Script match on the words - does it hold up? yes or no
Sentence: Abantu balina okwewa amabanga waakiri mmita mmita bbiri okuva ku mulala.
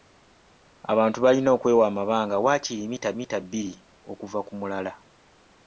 yes